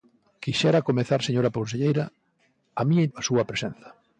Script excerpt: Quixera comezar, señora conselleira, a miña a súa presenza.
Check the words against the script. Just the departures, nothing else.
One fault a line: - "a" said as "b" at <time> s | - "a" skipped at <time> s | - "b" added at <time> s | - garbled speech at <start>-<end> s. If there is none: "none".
none